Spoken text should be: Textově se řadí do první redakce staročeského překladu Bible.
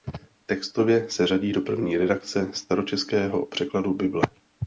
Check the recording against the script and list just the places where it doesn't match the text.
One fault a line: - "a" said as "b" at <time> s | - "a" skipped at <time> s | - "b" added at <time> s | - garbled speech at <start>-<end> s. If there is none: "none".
none